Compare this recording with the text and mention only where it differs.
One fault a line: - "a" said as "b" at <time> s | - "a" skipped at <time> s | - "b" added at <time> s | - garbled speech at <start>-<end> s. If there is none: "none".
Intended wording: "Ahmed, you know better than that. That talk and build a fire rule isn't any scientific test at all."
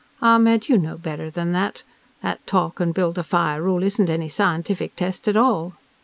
none